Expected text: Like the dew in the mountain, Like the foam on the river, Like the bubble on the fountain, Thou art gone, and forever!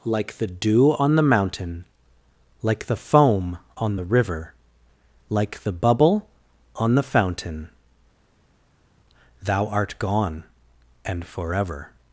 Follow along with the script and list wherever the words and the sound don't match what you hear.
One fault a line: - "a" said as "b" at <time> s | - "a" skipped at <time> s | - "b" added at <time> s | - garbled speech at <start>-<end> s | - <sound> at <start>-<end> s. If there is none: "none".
- "in" said as "on" at 1.0 s